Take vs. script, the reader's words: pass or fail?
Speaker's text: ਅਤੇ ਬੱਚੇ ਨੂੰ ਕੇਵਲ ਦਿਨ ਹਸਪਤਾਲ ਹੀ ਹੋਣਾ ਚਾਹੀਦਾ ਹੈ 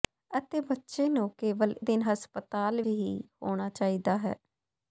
pass